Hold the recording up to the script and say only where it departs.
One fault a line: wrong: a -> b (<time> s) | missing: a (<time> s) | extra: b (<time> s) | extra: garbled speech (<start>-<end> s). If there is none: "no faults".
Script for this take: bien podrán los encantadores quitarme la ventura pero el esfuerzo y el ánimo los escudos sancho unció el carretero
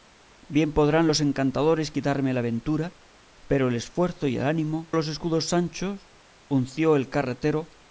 no faults